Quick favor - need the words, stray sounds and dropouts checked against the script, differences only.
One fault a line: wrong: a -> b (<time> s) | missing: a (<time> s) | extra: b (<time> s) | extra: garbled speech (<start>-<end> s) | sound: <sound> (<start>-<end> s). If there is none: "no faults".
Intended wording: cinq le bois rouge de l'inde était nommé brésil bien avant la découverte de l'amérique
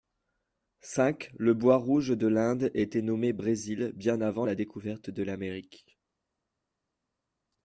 no faults